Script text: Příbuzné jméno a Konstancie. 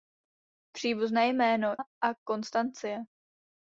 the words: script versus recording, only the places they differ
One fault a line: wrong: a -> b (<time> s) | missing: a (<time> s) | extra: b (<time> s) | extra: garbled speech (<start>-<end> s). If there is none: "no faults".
no faults